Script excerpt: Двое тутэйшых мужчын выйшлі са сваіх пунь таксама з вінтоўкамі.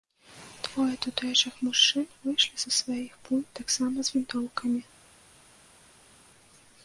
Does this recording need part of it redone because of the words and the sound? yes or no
no